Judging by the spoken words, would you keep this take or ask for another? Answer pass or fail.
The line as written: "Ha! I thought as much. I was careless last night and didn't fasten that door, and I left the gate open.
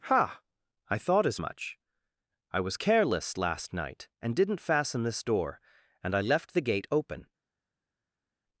fail